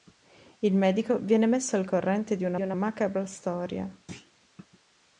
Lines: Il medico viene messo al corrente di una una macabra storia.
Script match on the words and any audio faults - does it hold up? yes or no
no